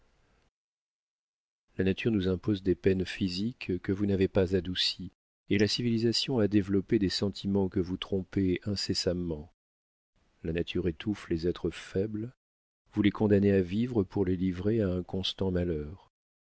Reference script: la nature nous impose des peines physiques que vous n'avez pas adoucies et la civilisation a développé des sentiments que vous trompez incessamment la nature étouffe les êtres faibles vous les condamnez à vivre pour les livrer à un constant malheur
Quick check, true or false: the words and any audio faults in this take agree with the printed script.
true